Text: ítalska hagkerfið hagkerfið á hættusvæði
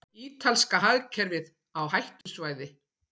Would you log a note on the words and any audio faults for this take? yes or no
yes